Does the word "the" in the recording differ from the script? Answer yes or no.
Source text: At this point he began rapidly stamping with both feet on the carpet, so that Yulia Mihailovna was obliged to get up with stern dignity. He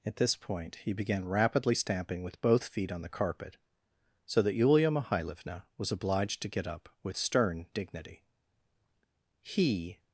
no